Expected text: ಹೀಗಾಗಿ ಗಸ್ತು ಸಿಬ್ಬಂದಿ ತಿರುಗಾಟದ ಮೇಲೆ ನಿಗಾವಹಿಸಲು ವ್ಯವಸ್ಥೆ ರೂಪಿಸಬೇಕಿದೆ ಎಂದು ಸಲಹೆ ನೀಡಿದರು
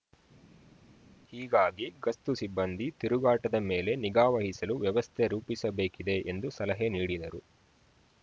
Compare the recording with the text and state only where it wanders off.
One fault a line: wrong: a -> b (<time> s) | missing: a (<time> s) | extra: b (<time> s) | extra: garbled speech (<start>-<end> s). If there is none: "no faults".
no faults